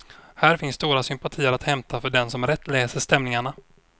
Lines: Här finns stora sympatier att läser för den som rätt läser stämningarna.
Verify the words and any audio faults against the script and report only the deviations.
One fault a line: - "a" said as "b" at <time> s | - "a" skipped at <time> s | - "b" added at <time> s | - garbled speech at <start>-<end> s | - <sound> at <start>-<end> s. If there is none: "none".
- "läser" said as "hämta" at 1.6 s